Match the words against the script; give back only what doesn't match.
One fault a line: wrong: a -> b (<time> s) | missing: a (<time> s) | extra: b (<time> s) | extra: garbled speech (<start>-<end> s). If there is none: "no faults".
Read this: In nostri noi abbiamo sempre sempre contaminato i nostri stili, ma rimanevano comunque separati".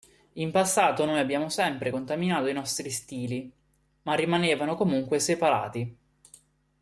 wrong: nostri -> passato (0.5 s)
missing: sempre (1.9 s)